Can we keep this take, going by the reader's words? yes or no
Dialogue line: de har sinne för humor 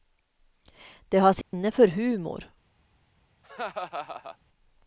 yes